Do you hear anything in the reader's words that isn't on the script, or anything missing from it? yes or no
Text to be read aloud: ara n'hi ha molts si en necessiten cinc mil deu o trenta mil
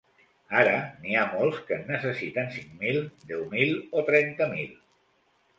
yes